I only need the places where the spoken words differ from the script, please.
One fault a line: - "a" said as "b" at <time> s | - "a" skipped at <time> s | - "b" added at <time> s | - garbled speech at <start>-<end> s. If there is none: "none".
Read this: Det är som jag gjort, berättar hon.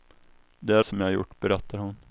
none